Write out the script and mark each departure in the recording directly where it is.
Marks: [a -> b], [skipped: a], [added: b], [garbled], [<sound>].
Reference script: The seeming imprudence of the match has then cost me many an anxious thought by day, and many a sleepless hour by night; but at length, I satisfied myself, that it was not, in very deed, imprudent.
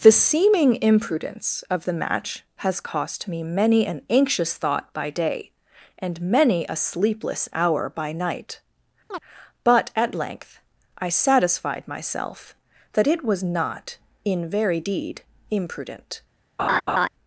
The seeming imprudence of the match has [skipped: then] cost me many an anxious thought by day, and many a sleepless hour by night; [chirp] but at length, I satisfied myself, that it was not, in very deed, imprudent. [laugh]